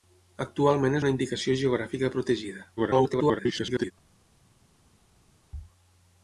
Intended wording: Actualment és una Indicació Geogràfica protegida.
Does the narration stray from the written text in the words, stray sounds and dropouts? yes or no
yes